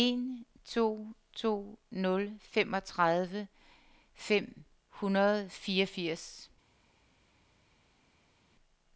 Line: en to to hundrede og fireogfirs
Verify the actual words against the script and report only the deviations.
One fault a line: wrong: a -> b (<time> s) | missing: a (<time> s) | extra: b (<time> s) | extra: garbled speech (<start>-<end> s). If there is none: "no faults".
extra: nul femogtredive fem (1.9 s)